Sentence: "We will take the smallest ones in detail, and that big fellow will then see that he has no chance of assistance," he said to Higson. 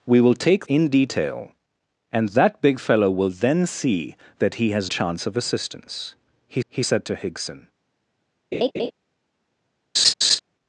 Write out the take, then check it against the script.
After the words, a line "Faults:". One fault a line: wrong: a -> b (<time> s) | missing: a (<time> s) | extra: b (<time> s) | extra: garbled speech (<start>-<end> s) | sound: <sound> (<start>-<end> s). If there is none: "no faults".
"We will take in detail, and that big fellow will then see that he has chance of assistance," he he said to Higson.
Faults:
missing: the smallest ones (0.7 s)
missing: no (4.9 s)
extra: he (6.7 s)
sound: laugh (8.5-8.9 s)
sound: laugh (9.9-10.4 s)